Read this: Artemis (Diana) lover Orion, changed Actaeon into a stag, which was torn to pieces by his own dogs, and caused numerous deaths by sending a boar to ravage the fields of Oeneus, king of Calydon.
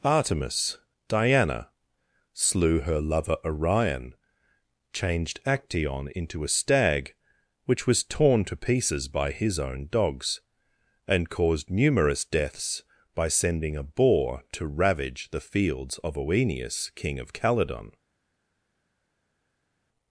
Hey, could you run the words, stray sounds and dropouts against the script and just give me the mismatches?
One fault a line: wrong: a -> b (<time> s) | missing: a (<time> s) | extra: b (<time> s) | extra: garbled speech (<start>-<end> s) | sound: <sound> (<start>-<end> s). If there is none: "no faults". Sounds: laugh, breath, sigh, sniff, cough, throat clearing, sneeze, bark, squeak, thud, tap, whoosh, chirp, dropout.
extra: slew her (2.3 s)